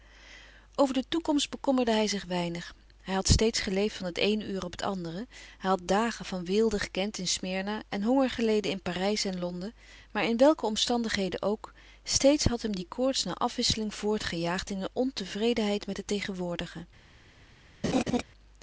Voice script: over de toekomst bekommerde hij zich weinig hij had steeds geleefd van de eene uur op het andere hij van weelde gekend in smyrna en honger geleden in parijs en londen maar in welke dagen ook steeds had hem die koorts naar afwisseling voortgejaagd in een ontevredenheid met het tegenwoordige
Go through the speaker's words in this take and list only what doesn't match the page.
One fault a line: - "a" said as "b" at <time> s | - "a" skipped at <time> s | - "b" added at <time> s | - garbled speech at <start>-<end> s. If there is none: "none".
- "de" said as "het" at 4.0 s
- "had dagen" added at 5.7 s
- "dagen" said as "omstandigheden" at 10.7 s